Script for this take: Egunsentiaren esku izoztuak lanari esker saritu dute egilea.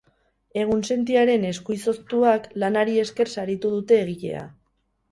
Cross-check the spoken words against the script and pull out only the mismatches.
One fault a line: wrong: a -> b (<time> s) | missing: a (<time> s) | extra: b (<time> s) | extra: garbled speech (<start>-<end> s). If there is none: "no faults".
no faults